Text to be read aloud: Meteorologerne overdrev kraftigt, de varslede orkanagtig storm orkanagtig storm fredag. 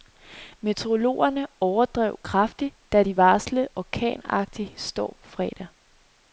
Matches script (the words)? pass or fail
fail